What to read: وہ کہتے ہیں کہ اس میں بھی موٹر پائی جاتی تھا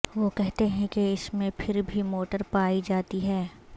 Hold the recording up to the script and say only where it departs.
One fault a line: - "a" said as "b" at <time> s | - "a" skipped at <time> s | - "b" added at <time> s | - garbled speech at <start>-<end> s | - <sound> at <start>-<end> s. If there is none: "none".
- "پھر" added at 1.6 s
- "تھا" said as "ہے" at 3.2 s